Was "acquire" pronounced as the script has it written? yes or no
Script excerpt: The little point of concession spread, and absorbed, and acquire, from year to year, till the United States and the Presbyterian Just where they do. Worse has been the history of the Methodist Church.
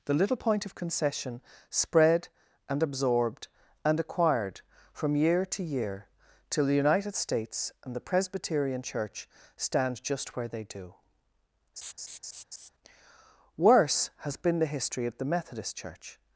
no